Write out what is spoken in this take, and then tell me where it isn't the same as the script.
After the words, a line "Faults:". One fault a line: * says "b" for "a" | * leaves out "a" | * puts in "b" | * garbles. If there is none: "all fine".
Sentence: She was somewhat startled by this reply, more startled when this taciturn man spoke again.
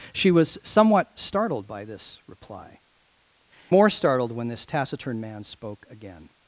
She was somewhat startled by this reply, more startled when this taciturn man spoke again.
Faults:
all fine